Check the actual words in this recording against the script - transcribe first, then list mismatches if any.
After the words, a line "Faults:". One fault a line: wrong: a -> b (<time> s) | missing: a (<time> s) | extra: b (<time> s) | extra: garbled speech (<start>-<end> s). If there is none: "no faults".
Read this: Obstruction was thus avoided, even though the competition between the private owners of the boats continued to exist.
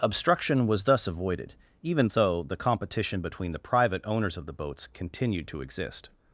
Obstruction was thus avoided, even though the competition between the private owners of the boats continued to exist.
Faults:
no faults